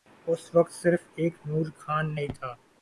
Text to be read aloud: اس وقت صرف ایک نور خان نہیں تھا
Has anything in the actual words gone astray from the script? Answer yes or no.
no